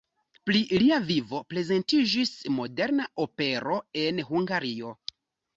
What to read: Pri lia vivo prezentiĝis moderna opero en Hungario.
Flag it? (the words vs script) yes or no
no